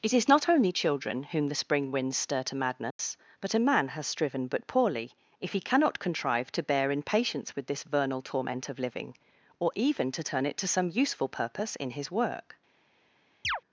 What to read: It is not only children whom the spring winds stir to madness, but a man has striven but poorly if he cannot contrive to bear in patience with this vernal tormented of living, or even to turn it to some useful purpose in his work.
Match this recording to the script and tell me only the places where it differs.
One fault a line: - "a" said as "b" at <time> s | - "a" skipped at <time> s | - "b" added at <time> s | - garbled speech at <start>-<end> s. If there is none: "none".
- "tormented" said as "torment" at 8.2 s